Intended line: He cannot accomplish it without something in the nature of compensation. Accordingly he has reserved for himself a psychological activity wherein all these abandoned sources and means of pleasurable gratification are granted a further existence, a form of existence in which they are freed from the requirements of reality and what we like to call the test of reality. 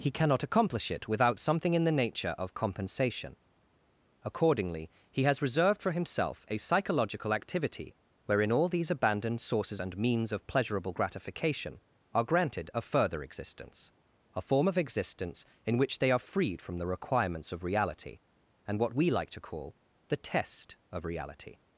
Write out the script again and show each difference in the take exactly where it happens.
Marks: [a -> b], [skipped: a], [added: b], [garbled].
He cannot accomplish it without something in the nature of compensation. Accordingly he has reserved for himself a psychological activity wherein all these abandoned sources and means of pleasurable gratification are granted a further existence, a form of existence in which they are freed from the requirements of reality and what we like to call the test of reality.